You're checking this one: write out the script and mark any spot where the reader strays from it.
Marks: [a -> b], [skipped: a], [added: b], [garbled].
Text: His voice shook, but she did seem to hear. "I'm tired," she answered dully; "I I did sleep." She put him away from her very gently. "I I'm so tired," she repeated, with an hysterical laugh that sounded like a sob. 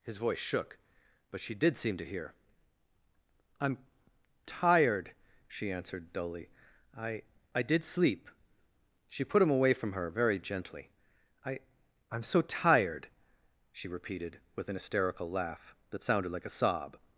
His voice shook, but she did seem to hear. "I'm tired," she answered dully; "I I did sleep." She put him away from her very gently. "I I'm so tired," she repeated, with an hysterical laugh that sounded like a sob.